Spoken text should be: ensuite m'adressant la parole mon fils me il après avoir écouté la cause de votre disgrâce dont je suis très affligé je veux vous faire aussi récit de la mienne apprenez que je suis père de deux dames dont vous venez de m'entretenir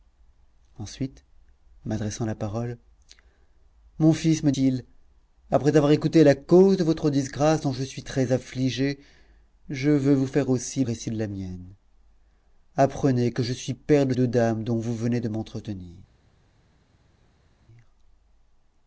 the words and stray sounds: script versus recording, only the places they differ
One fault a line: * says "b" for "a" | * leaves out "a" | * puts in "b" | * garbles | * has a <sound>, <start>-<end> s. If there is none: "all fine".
all fine